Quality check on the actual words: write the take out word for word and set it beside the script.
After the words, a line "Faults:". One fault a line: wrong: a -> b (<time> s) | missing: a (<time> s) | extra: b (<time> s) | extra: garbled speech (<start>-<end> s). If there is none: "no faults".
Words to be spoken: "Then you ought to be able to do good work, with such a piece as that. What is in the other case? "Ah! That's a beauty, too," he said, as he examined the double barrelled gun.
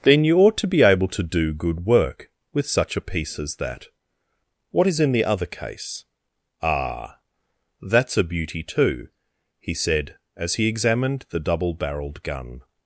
"Then you ought to be able to do good work, with such a piece as that. What is in the other case? "Ah! That's a beauty, too," he said, as he examined the double barrelled gun.
Faults:
no faults